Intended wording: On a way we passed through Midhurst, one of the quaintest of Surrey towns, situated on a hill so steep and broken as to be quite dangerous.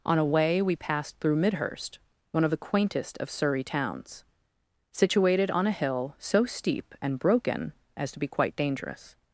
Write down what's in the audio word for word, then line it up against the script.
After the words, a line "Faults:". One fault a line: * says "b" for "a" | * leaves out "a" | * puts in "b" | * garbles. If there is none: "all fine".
On a way we passed through Midhurst, one of the quaintest of Surrey towns, situated on a hill so steep and broken as to be quite dangerous.
Faults:
all fine